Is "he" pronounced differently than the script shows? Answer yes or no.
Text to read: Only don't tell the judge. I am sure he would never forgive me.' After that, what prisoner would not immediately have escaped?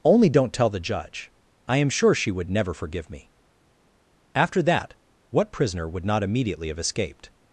yes